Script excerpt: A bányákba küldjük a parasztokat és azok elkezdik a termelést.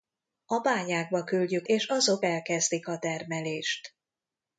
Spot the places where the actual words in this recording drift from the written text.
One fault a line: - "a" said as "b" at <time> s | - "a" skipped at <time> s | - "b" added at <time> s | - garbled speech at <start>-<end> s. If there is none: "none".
- "a parasztokat" skipped at 1.7 s